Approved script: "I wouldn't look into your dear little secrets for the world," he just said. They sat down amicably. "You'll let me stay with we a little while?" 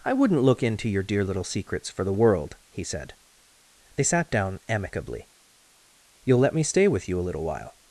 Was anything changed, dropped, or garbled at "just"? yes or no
yes